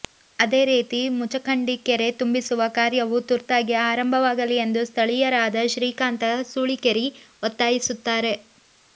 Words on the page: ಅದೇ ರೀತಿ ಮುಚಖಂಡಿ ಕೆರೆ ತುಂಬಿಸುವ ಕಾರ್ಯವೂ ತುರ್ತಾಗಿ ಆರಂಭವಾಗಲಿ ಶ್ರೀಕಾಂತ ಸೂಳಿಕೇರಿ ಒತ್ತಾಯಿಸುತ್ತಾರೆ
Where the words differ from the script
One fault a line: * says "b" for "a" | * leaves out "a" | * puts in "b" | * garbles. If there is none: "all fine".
* puts in "ಎಂದು ಸ್ಥಳೀಯರಾದ"